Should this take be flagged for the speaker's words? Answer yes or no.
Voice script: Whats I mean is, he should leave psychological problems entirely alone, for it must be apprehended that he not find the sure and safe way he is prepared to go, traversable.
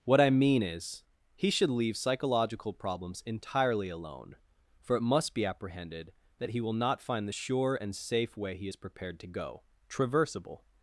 yes